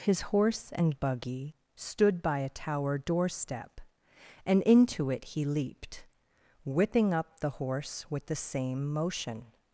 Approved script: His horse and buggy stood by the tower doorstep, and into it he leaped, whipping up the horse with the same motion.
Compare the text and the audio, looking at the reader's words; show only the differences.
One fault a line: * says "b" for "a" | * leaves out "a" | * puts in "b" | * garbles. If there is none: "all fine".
* says "a" for "the"